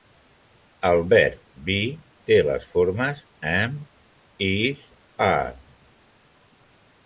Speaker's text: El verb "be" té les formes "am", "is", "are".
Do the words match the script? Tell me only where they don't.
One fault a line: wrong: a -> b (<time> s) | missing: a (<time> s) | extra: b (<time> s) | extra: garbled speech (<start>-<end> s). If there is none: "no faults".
no faults